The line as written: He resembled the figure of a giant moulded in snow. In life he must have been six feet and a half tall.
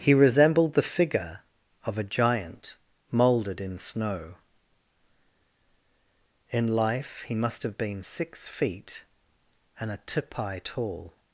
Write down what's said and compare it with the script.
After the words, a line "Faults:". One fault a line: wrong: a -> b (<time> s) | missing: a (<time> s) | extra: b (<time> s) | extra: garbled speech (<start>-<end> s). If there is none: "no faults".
He resembled the figure of a giant moulded in snow. In life he must have been six feet and a tipi tall.
Faults:
wrong: half -> tipi (10.1 s)